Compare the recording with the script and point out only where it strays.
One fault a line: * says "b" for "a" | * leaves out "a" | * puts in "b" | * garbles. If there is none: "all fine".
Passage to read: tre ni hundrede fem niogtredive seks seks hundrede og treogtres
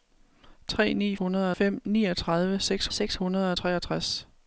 all fine